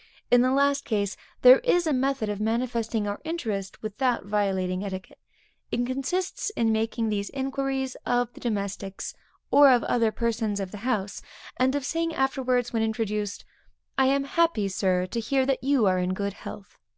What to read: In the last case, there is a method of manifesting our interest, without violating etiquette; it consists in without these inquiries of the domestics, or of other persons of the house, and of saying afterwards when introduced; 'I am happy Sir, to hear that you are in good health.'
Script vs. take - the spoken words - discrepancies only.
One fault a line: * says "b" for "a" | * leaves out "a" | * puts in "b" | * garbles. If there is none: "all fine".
* says "making" for "without"